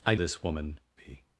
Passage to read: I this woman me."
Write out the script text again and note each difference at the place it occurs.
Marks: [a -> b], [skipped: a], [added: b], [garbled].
I this woman me."